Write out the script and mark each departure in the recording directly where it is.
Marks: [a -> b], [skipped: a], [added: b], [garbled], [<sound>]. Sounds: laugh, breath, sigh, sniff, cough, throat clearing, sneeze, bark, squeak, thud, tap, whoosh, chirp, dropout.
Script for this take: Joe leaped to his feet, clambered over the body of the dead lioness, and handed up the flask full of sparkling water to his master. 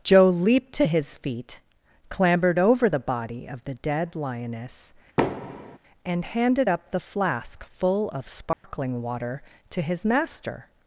Joe leaped to his feet, clambered over the body of the dead lioness, [thud] and handed up the flask full of sparkling [dropout] water to his master.